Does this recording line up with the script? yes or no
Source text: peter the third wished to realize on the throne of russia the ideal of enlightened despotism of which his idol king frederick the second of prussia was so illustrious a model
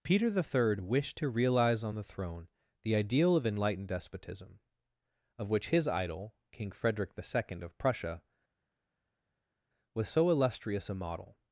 no